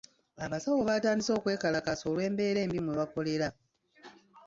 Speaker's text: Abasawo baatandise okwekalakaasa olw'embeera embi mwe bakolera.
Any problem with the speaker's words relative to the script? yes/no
no